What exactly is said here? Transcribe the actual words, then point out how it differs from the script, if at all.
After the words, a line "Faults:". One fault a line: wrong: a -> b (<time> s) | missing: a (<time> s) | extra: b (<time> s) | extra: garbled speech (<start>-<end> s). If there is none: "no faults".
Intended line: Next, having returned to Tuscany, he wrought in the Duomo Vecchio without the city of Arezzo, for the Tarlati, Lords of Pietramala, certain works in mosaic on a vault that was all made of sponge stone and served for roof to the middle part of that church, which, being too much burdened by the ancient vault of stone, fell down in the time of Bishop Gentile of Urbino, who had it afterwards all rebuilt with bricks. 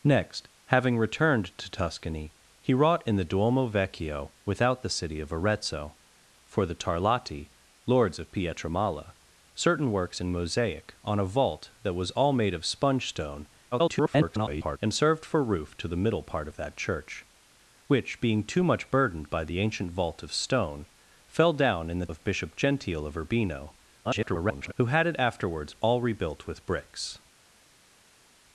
Next, having returned to Tuscany, he wrought in the Duomo Vecchio without the city of Arezzo, for the Tarlati, Lords of Pietramala, certain works in mosaic on a vault that was all made of sponge stone [garbled] and served for roof to the middle part of that church, which, being too much burdened by the ancient vault of stone, fell down in the of Bishop Gentile of Urbino, [garbled] who had it afterwards all rebuilt with bricks.
Faults:
extra: garbled speech (13.7-14.8 s)
missing: time (22.1 s)
extra: garbled speech (24.0-24.7 s)